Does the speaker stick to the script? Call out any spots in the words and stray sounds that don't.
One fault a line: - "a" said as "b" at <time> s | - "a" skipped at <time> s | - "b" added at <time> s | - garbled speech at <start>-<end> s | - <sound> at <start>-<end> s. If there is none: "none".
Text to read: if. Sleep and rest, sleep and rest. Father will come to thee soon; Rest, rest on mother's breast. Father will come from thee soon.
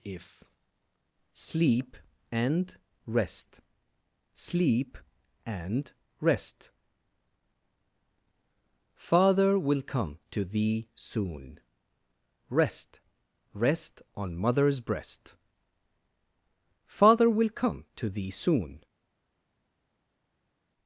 - "from" said as "to" at 18.0 s